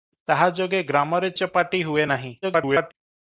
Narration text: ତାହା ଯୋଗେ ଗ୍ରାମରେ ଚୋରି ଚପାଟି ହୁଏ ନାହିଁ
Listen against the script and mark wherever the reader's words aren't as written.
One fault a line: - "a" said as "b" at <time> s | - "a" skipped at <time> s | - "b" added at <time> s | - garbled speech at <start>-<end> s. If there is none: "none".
- "ଚୋରି" skipped at 1.3 s
- garbled speech at 2.4-2.9 s